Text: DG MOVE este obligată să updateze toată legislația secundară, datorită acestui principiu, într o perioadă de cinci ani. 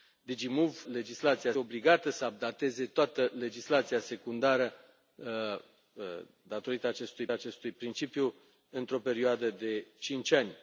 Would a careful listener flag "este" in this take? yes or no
yes